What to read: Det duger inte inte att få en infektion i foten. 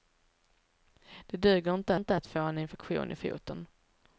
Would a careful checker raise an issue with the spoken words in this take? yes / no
no